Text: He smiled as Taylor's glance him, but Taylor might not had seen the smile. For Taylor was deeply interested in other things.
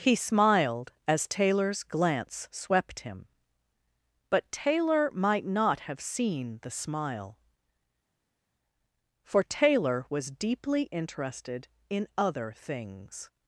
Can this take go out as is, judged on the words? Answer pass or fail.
fail